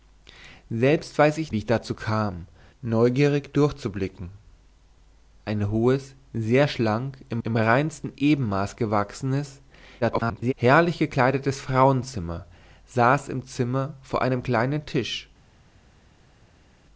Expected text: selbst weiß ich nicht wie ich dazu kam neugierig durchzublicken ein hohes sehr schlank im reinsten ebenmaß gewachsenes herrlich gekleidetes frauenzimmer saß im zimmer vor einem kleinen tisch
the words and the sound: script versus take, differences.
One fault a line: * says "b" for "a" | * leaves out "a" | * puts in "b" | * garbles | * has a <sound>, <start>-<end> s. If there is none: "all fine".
* leaves out "nicht"
* puts in "im"
* garbles